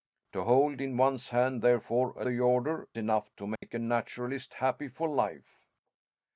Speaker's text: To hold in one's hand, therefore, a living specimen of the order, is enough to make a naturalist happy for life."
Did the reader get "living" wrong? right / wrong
wrong